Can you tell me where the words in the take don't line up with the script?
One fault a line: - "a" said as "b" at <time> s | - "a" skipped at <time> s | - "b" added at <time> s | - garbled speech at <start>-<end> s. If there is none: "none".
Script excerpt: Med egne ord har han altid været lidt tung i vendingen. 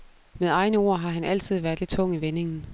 none